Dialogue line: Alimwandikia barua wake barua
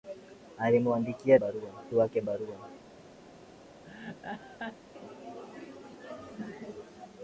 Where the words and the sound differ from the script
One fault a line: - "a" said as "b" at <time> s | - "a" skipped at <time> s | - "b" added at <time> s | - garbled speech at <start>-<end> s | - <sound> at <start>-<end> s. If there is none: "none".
- laugh at 3.8-4.8 s